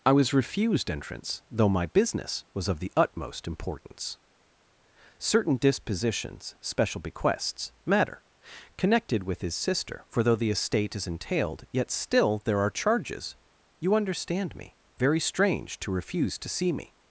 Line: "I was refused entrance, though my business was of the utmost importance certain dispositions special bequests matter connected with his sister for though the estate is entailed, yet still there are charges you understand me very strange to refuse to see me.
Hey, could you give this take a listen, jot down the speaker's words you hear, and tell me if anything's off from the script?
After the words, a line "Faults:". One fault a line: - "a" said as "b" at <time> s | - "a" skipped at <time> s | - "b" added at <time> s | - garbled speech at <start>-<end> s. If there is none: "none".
"I was refused entrance, though my business was of the utmost importance certain dispositions special bequests matter connected with his sister for though the estate is entailed, yet still there are charges you understand me very strange to refuse to see me.
Faults:
none